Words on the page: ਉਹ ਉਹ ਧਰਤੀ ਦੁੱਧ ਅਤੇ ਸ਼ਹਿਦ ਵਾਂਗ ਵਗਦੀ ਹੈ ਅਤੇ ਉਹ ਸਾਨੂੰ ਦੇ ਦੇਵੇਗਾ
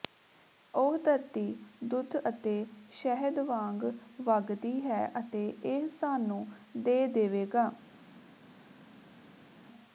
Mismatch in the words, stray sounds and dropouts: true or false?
true